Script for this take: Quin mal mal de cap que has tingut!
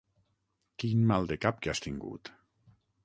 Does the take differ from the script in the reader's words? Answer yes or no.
yes